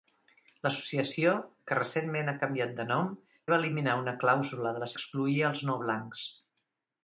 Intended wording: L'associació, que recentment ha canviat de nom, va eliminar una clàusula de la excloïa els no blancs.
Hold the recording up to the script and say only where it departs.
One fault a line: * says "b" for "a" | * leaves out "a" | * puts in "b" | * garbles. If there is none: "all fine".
all fine